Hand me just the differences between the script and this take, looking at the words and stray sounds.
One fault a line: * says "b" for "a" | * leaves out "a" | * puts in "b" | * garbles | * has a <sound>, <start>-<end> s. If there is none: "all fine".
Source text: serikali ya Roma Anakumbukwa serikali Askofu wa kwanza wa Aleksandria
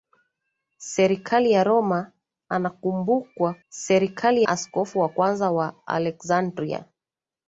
all fine